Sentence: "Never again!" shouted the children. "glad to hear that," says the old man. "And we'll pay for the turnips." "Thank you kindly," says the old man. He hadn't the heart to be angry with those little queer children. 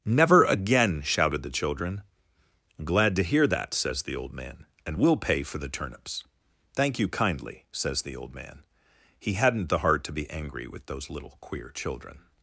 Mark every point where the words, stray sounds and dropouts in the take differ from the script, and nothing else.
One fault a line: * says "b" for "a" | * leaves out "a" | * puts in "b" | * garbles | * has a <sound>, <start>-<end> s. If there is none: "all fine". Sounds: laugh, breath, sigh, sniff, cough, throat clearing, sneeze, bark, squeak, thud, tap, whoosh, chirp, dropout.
all fine